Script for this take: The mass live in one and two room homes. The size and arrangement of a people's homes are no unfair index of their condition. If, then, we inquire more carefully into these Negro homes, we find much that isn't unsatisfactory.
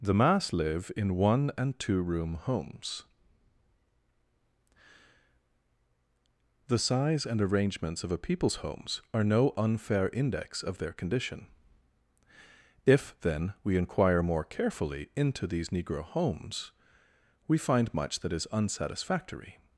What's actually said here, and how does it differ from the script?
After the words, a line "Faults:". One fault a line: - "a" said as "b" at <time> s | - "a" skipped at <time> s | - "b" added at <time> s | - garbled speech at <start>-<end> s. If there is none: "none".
The mass live in one and two room homes. The size and arrangements of a people's homes are no unfair index of their condition. If, then, we inquire more carefully into these Negro homes, we find much that is unsatisfactory.
Faults:
- "arrangement" said as "arrangements" at 7.4 s
- "isn't" said as "is" at 18.3 s